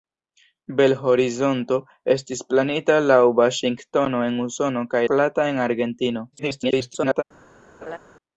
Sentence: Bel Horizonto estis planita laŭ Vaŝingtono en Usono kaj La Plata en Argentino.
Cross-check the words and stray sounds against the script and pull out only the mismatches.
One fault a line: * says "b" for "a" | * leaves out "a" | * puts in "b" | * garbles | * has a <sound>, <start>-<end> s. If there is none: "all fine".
* leaves out "La"
* garbles
* has a laugh, 7.8-8.0 s